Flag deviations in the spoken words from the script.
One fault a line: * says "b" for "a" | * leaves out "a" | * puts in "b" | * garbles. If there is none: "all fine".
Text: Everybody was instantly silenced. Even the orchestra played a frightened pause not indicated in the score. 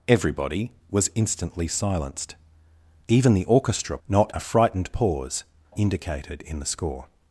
* says "not" for "played"
* leaves out "not"